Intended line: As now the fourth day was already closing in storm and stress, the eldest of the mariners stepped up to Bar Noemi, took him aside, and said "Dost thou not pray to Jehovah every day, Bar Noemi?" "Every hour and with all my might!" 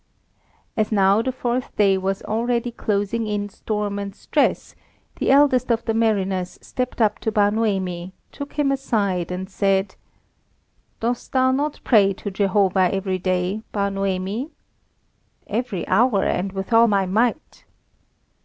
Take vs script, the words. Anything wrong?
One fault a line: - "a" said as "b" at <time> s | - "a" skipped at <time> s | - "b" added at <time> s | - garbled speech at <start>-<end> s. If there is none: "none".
none